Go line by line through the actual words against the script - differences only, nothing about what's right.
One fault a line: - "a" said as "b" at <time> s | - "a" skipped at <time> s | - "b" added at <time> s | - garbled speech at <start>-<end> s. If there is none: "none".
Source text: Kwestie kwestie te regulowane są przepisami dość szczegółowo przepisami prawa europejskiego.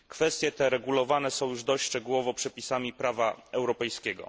- "kwestie" skipped at 0.5 s
- "przepisami" said as "już" at 1.5 s